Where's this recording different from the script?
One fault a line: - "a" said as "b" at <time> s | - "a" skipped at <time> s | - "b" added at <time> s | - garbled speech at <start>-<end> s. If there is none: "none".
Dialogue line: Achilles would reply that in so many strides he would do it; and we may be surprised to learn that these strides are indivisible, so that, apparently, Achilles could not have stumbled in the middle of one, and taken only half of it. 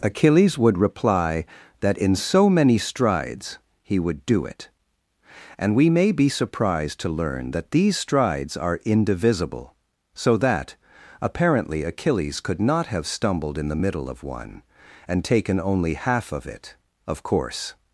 - "Of course" added at 17.1 s